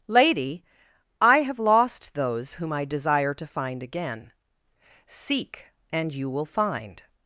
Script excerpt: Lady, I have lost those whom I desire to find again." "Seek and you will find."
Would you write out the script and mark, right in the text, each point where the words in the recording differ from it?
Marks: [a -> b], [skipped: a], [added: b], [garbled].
Lady, I have lost those whom I desire to find again." "Seek and you will find."